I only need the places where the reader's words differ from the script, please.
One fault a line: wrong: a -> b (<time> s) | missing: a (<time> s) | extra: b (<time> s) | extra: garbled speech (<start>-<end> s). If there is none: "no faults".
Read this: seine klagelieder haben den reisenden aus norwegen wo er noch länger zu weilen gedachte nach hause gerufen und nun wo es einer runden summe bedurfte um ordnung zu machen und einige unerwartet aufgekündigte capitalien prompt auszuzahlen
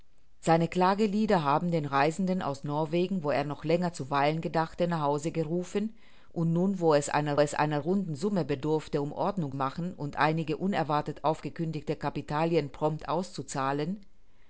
extra: es einer (7.4 s)
missing: zu (9.6 s)